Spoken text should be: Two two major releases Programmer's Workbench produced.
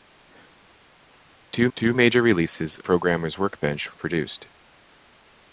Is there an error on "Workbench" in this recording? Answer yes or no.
no